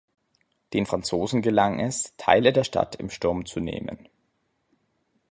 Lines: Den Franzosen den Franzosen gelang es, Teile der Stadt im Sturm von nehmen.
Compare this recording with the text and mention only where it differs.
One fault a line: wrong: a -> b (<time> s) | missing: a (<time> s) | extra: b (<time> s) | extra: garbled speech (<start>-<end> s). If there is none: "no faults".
missing: den Franzosen (1.4 s)
wrong: von -> zu (3.5 s)